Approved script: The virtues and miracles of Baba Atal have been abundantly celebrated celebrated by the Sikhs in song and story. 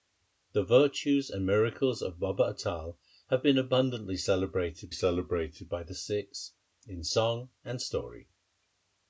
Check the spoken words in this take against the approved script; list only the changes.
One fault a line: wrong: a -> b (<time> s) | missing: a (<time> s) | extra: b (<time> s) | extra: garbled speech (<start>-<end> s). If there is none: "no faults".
no faults